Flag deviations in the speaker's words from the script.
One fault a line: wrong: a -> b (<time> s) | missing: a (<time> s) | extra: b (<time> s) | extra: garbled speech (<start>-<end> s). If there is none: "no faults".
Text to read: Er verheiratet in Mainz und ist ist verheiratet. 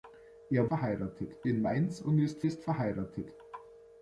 no faults